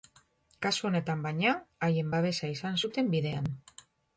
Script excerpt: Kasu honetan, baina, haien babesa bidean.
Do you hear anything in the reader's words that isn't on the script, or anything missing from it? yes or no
yes